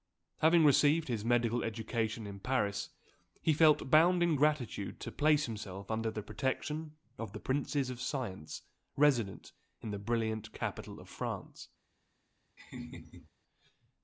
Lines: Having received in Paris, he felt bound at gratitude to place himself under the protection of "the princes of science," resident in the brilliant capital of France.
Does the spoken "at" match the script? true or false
false